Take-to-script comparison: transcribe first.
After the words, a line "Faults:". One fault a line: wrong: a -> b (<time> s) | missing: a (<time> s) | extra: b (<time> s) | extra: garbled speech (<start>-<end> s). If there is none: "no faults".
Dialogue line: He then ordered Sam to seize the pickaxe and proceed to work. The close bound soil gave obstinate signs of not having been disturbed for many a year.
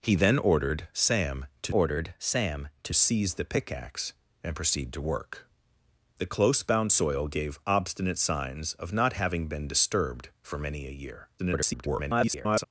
He then ordered Sam to ordered Sam to seize the pickaxe and proceed to work. The close bound soil gave obstinate signs of not having been disturbed for many a year. [garbled]
Faults:
extra: ordered Sam to (1.7 s)
extra: garbled speech (11.4-12.6 s)